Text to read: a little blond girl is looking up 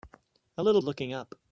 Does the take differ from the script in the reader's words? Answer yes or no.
yes